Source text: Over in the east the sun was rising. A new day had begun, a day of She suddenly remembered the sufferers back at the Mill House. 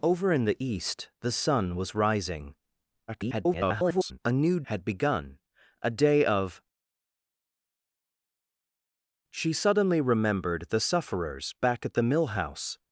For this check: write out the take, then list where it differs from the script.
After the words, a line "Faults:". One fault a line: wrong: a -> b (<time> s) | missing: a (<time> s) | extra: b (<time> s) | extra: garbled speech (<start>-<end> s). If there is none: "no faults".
Over in the east the sun was rising. [garbled] A new had begun, a day of She suddenly remembered the sufferers back at the Mill House.
Faults:
extra: garbled speech (3.1-4.2 s)
missing: day (4.6 s)